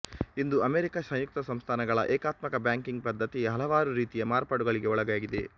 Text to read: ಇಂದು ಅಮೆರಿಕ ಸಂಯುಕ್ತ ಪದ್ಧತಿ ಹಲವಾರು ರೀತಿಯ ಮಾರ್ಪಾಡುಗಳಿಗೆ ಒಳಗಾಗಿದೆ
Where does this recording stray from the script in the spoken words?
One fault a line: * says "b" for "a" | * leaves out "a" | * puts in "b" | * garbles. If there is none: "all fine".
* puts in "ಸಂಸ್ಥಾನಗಳ ಏಕಾತ್ಮಕ ಬ್ಯಾಂಕಿಂಗ್"